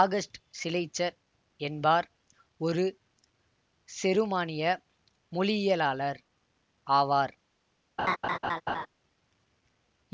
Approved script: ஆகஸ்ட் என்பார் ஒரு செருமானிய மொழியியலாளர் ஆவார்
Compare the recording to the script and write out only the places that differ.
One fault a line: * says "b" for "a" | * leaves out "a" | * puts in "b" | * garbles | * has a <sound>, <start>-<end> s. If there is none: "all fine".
* puts in "சிலெய்ச்சர்"
* has a laugh, 8.0-8.9 s